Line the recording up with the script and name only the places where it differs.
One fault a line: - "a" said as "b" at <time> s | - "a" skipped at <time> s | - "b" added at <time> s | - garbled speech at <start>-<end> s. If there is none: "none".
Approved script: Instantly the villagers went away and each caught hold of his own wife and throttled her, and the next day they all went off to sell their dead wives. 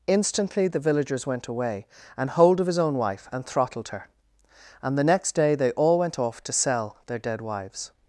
- "each caught" skipped at 2.3 s